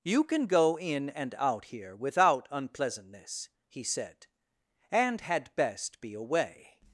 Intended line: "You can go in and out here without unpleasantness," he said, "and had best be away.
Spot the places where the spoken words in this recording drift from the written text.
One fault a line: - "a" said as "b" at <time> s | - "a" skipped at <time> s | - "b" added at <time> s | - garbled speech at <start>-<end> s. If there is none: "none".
none